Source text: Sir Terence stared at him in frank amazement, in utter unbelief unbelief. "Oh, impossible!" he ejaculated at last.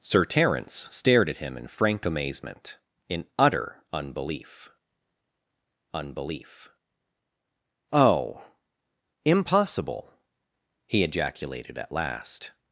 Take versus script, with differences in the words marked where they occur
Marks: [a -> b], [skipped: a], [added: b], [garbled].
Sir Terence stared at him in frank amazement, in utter unbelief unbelief. "Oh, impossible!" he ejaculated at last.